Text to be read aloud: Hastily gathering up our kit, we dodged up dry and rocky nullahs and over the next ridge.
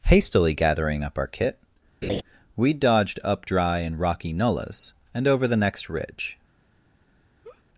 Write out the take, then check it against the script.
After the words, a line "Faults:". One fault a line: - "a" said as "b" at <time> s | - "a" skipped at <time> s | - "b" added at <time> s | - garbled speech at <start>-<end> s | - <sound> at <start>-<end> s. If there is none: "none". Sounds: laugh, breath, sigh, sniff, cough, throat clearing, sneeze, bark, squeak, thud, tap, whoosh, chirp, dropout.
Hastily gathering up our kit, we dodged up dry and rocky nullahs and over the next ridge.
Faults:
- laugh at 2.0-2.2 s
- laugh at 7.4-7.6 s